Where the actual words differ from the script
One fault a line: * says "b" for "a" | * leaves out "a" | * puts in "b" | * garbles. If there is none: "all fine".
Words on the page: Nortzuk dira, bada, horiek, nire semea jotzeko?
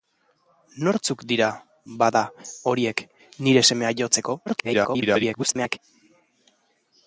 * garbles